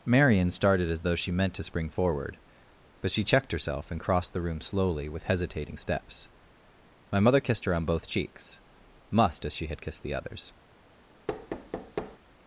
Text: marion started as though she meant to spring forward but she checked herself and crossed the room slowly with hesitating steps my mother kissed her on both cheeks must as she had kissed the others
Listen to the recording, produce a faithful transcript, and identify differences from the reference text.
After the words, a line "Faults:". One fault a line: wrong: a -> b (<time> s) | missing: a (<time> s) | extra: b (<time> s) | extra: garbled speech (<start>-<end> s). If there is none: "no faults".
marion started as though she meant to spring forward but she checked herself and crossed the room slowly with hesitating steps my mother kissed her on both cheeks must as she had kissed the others
Faults:
no faults